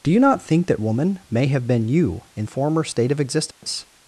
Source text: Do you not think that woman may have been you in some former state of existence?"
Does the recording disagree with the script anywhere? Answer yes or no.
yes